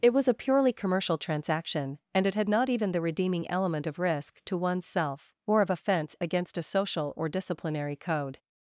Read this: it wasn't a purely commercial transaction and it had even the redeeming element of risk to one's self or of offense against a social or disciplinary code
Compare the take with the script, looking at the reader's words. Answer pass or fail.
fail